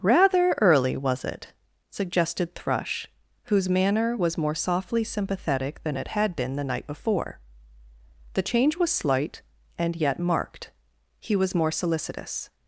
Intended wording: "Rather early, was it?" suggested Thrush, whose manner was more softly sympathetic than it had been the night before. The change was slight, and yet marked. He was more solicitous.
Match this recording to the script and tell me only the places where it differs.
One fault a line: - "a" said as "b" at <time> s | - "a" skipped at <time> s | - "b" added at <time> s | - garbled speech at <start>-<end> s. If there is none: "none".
none